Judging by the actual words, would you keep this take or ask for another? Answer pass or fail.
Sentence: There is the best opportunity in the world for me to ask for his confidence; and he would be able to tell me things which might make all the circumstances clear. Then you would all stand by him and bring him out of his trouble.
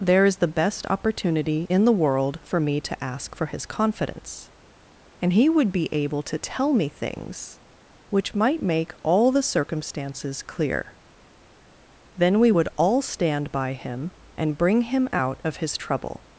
fail